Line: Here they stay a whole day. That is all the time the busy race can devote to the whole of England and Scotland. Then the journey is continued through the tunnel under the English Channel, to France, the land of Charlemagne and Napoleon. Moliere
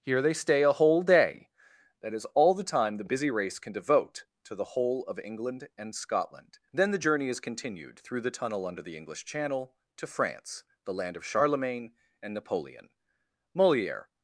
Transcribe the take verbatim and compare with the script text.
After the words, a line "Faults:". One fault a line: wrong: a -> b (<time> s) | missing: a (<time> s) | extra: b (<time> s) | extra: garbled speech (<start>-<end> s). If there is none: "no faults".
Here they stay a whole day. That is all the time the busy race can devote to the whole of England and Scotland. Then the journey is continued through the tunnel under the English Channel, to France, the land of Charlemagne and Napoleon. Moliere
Faults:
no faults